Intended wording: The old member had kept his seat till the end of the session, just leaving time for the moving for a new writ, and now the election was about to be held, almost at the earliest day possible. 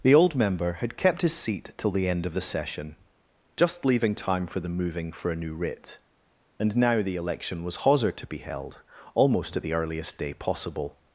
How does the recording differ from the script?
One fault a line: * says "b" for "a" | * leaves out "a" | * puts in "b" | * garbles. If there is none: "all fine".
* says "hawser" for "about"